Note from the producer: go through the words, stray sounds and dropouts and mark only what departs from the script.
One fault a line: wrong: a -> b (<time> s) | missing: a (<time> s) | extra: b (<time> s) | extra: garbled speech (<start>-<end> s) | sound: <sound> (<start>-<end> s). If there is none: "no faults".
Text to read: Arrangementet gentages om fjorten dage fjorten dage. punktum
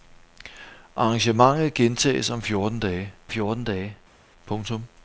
no faults